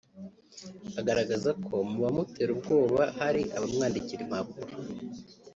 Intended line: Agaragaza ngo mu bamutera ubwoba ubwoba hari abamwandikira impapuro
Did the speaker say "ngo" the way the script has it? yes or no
no